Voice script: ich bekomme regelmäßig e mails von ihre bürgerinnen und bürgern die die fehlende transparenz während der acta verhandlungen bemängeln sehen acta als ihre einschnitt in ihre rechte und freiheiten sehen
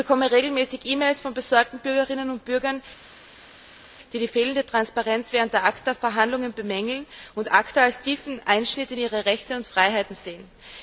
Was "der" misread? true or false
false